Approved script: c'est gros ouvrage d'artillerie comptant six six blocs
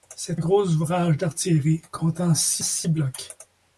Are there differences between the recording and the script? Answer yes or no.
no